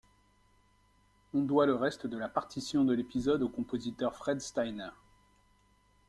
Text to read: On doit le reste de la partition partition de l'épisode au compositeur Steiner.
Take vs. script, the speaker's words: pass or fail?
fail